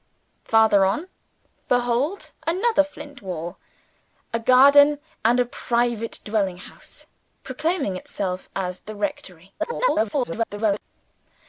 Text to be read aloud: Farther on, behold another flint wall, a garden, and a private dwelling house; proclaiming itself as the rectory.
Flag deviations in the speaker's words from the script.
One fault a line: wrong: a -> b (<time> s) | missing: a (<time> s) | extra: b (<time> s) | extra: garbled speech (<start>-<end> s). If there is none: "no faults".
extra: garbled speech (9.6-10.8 s)